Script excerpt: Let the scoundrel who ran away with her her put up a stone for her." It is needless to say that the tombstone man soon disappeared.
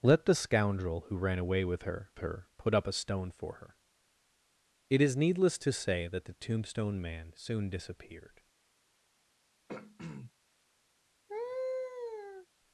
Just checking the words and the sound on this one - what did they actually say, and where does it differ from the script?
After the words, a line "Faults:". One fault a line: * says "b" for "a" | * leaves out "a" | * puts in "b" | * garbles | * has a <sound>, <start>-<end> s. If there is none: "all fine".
Let the scoundrel who ran away with her her put up a stone for her." It is needless to say that the tombstone man soon disappeared.
Faults:
* has a throat clearing, 9.7-10.3 s
* has a laugh, 11.3-12.5 s